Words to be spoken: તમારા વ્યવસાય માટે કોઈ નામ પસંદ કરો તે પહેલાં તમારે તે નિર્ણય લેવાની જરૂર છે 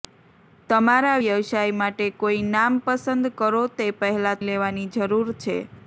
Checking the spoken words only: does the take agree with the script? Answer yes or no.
no